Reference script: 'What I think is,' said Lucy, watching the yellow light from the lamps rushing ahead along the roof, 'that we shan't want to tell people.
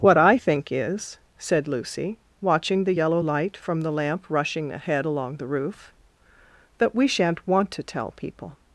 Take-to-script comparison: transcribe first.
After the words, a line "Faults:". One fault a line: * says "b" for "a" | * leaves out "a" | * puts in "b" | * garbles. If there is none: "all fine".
'What I think is,' said Lucy, watching the yellow light from the lamp rushing ahead along the roof, 'that we shan't want to tell people.
Faults:
* says "lamp" for "lamps"